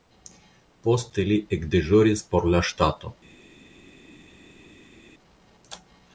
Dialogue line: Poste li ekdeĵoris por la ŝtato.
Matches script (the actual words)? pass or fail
pass